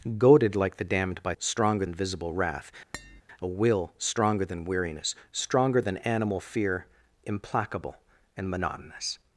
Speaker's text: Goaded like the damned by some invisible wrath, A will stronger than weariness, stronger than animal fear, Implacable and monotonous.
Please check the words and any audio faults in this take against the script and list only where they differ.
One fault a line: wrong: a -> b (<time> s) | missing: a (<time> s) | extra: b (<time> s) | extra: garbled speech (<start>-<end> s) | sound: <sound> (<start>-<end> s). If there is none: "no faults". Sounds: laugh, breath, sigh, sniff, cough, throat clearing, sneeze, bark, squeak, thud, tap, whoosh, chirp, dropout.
wrong: some -> stronger (1.4 s)
sound: tap (2.9-3.2 s)